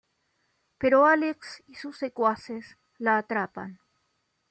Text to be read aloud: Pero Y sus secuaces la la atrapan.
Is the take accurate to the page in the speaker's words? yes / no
no